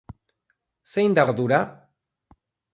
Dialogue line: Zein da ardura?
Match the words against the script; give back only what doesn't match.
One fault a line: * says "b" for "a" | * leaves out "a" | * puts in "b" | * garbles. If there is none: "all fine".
all fine